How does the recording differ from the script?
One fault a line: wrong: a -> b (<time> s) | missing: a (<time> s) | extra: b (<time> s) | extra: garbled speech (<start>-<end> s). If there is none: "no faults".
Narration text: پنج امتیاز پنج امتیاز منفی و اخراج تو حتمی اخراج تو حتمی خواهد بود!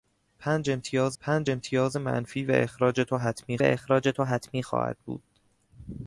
no faults